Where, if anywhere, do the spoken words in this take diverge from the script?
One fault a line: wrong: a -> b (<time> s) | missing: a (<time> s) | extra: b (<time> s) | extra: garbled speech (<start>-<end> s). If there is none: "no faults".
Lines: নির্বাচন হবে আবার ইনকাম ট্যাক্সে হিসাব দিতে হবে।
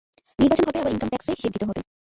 no faults